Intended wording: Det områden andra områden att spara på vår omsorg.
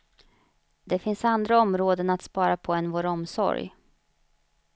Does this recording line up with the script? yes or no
no